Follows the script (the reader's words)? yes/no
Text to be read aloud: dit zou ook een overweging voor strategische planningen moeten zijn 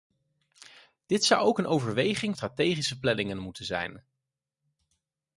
no